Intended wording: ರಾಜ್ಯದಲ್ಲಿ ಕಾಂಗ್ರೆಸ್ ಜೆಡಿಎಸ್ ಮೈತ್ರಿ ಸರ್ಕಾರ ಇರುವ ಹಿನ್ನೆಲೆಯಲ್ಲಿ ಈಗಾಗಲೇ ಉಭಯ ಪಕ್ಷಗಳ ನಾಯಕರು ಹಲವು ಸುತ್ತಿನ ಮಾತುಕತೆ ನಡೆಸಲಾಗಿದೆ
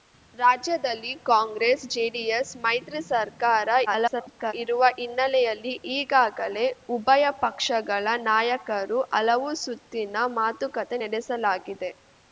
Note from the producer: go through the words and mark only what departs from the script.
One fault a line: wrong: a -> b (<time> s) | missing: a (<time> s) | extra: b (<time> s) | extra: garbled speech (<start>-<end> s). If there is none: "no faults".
extra: garbled speech (3.9-4.5 s)